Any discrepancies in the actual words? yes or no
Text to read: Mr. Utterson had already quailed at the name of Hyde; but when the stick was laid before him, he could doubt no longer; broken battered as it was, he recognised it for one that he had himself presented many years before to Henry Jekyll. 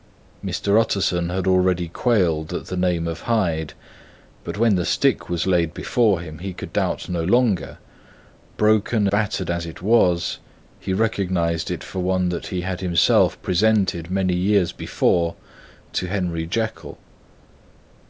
no